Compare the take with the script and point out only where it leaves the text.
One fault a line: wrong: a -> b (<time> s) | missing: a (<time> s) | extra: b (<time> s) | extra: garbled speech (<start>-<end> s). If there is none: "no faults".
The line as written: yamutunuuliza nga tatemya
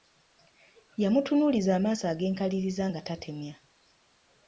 extra: amaaso ag'enkaliriza (1.8 s)